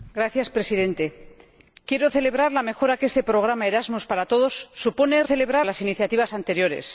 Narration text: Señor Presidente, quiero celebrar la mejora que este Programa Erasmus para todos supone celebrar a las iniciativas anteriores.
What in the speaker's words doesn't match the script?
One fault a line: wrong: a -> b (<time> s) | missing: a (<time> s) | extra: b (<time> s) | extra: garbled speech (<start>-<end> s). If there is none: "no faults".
no faults